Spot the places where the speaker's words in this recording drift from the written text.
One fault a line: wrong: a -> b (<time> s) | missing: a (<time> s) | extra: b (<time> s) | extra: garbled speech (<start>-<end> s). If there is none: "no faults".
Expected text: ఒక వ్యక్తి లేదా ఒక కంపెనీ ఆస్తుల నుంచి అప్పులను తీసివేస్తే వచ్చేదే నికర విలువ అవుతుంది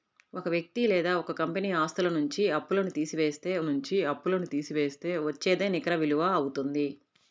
extra: నుంచి అప్పులను తీసివేస్తే (3.6 s)